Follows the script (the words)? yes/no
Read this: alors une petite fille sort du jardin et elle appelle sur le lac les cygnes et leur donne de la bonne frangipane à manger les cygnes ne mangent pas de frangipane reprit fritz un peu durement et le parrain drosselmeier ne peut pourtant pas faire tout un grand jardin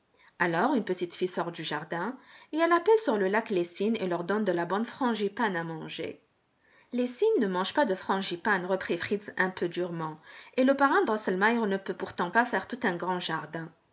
yes